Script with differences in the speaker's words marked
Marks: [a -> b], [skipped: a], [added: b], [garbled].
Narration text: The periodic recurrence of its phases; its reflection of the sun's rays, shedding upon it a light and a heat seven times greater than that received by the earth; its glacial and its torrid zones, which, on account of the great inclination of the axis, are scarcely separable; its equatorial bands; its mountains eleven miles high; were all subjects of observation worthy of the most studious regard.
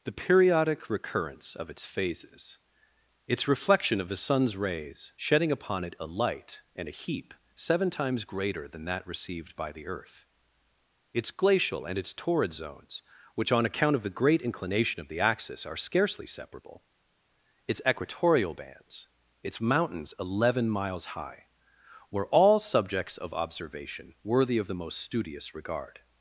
The periodic recurrence of its phases; its reflection of the sun's rays, shedding upon it a light and a [heat -> heap] seven times greater than that received by the earth; its glacial and its torrid zones, which, on account of the great inclination of the axis, are scarcely separable; its equatorial bands; its mountains eleven miles high; were all subjects of observation worthy of the most studious regard.